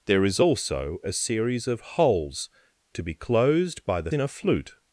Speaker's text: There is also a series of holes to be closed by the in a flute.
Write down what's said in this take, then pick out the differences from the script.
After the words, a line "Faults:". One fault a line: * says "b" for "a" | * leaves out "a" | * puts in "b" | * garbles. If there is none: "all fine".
There is also a series of holes to be closed by the in a flute.
Faults:
all fine